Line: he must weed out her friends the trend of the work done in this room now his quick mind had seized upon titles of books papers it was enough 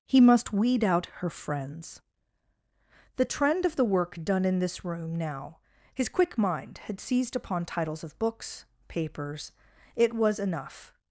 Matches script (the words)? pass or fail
pass